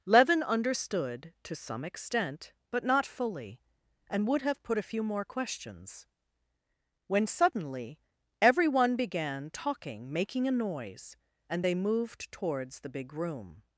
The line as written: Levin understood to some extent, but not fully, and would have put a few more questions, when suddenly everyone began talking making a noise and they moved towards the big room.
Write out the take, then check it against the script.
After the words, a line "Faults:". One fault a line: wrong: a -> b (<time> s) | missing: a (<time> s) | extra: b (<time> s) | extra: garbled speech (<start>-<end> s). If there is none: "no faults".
Levin understood to some extent, but not fully, and would have put a few more questions, when suddenly everyone began talking making a noise and they moved towards the big room.
Faults:
no faults